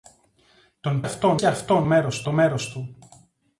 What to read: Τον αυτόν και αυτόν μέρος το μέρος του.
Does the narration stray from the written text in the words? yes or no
no